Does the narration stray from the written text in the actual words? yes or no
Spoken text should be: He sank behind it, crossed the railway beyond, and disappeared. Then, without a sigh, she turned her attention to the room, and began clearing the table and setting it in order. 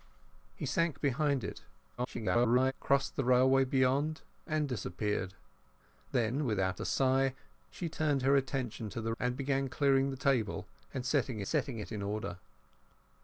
yes